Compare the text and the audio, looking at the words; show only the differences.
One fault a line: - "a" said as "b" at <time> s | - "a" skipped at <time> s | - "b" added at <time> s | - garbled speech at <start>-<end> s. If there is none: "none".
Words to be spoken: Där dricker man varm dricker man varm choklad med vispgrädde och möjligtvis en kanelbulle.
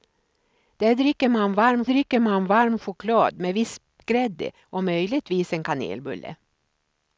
none